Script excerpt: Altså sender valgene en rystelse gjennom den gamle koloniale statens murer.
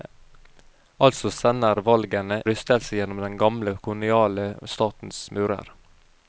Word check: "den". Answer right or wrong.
right